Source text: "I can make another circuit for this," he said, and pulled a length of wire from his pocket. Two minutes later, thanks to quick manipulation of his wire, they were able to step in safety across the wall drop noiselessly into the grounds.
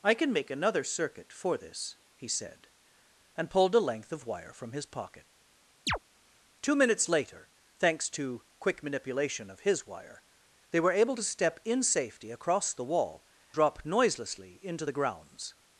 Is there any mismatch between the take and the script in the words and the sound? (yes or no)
yes